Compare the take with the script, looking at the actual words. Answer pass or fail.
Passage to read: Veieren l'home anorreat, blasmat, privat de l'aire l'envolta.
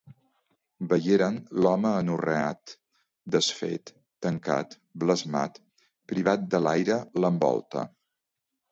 fail